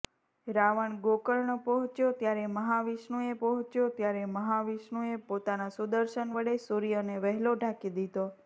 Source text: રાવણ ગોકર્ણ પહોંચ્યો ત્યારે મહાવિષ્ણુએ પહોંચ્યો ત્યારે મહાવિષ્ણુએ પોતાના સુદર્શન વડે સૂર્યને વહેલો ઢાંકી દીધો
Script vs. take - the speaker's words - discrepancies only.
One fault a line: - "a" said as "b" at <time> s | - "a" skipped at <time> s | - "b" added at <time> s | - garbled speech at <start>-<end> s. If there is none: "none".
none